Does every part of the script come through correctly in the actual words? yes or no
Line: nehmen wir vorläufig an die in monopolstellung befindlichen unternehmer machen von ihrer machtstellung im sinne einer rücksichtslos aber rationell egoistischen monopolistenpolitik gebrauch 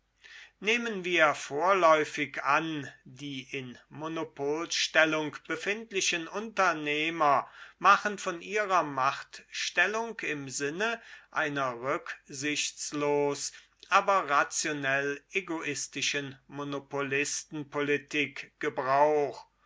yes